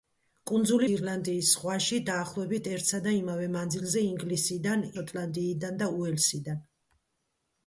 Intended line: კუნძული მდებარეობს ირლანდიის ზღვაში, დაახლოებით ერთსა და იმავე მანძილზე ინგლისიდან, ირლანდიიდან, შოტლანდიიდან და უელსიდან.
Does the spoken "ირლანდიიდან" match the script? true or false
false